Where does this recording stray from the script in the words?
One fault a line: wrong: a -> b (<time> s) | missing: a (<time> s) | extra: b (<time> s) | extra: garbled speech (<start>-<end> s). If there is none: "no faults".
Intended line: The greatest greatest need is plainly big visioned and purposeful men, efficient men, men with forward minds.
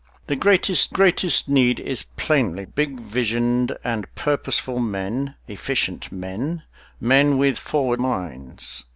no faults